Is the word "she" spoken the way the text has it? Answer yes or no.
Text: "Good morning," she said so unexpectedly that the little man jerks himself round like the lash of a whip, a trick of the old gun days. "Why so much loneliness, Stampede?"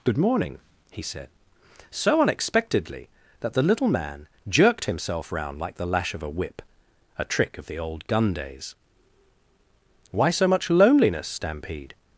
no